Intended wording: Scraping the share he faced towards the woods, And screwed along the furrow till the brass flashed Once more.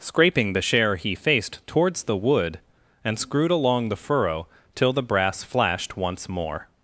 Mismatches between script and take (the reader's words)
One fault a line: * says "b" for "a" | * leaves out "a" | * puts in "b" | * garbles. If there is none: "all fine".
* says "wood" for "woods"